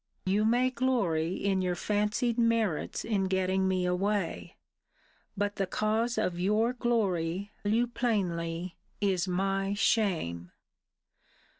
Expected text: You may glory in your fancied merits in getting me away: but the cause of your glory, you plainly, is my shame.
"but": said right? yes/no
yes